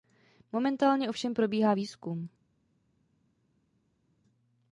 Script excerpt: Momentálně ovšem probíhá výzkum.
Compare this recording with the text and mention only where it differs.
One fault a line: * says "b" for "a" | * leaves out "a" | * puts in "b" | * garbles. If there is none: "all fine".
all fine